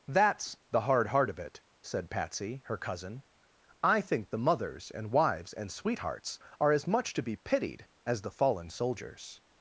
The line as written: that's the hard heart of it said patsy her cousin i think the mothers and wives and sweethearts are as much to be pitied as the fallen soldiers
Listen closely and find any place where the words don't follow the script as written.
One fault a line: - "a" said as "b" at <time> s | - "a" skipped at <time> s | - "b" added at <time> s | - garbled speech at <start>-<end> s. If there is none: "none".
none